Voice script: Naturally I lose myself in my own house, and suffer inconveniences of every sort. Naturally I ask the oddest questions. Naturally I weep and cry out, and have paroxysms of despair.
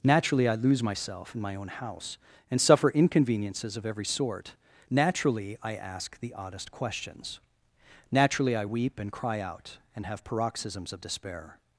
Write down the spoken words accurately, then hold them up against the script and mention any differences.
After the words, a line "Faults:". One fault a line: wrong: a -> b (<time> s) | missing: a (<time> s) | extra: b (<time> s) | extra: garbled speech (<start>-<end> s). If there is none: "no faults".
Naturally I lose myself in my own house, and suffer inconveniences of every sort. Naturally I ask the oddest questions. Naturally I weep and cry out, and have paroxysms of despair.
Faults:
no faults